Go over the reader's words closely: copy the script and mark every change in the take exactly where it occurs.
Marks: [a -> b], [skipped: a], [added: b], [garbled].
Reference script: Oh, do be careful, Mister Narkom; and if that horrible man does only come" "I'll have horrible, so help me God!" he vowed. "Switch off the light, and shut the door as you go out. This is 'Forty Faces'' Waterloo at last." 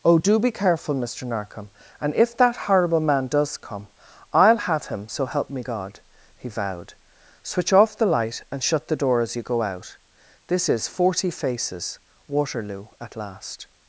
Oh, do be careful, Mister Narkom; and if that horrible man does [skipped: only] come" "I'll have [horrible, -> him] so help me God!" he vowed. "Switch off the light, and shut the door as you go out. This is 'Forty Faces'' Waterloo at last."